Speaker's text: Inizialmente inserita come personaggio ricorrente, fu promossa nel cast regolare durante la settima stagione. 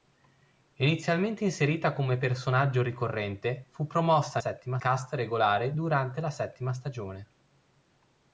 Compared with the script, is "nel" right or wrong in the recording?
wrong